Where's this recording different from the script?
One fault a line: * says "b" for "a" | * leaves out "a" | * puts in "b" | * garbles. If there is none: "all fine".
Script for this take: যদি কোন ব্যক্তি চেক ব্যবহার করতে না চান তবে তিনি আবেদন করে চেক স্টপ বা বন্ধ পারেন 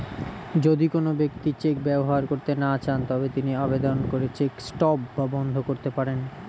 * puts in "করতে"